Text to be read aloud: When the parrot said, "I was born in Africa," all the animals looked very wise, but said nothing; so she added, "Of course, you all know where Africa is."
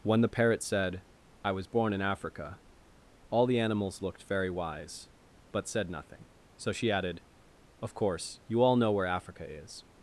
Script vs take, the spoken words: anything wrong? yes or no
no